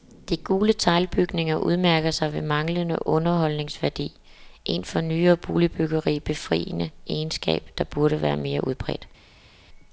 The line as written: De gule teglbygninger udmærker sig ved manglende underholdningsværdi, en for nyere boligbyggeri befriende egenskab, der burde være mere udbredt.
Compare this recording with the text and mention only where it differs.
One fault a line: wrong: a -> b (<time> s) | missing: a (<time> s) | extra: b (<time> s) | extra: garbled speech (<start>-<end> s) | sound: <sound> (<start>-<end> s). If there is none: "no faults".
no faults